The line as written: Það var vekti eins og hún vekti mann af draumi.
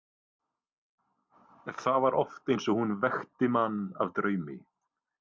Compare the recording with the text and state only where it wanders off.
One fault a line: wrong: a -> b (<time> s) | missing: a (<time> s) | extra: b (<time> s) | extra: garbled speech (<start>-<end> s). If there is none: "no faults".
wrong: vekti -> oft (2.2 s)